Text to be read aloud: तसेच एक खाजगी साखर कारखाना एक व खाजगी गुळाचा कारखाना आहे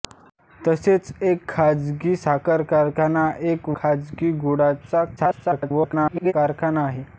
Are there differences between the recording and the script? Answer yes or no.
yes